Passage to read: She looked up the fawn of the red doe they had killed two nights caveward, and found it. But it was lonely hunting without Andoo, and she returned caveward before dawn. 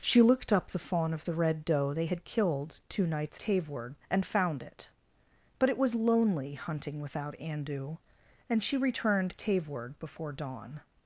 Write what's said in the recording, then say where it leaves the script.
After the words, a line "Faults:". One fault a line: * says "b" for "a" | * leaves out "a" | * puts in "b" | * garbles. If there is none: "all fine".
She looked up the fawn of the red doe they had killed two nights caveward, and found it. But it was lonely hunting without Andoo, and she returned caveward before dawn.
Faults:
all fine